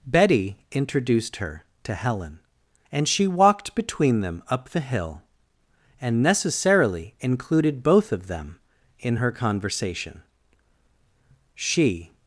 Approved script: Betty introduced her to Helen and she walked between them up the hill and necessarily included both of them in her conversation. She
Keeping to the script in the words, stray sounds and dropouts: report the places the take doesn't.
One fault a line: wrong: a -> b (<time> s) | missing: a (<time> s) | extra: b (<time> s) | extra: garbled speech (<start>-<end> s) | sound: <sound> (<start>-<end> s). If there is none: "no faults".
no faults